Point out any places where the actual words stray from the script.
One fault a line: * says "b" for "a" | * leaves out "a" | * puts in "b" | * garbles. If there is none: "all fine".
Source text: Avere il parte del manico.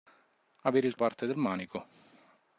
all fine